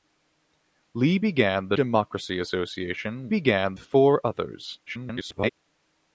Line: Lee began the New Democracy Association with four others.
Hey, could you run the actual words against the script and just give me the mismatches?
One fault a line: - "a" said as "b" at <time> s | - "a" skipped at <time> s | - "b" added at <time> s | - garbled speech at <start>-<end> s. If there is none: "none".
- "New" skipped at 1.8 s
- "with" said as "began" at 3.3 s
- garbled speech at 4.9-5.5 s